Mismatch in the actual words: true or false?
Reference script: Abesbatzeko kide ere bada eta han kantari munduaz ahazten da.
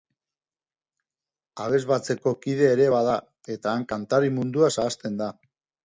false